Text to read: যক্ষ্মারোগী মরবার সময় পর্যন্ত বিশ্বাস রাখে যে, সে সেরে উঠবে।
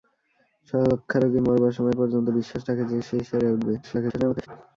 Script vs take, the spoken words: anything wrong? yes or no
yes